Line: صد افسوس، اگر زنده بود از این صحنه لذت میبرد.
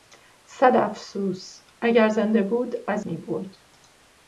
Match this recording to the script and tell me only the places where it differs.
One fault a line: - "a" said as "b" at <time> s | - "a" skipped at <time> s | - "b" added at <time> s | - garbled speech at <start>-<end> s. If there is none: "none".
- "این صحنه لذت" skipped at 3.0 s